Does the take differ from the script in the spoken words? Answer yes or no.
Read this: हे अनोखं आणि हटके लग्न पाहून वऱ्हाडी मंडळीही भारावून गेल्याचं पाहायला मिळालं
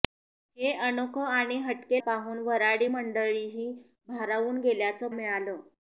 yes